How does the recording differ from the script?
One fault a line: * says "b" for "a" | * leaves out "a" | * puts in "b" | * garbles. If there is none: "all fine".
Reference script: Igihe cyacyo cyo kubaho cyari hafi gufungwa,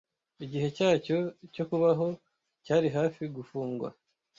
all fine